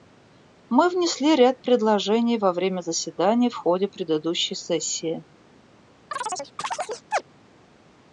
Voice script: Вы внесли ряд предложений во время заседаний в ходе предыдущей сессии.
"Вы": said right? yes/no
no